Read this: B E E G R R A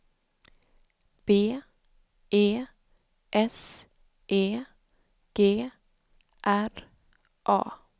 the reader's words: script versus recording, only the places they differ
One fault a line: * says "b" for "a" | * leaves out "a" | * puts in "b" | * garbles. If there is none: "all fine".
* puts in "S"
* leaves out "R"